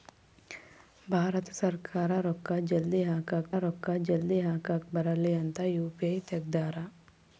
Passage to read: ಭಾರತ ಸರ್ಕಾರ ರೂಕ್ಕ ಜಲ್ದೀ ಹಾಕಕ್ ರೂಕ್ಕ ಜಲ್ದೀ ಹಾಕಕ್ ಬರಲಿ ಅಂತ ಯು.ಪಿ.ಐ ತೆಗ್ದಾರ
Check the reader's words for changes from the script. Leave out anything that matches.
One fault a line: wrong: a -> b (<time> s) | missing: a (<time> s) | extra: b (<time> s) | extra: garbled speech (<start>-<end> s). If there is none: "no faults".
no faults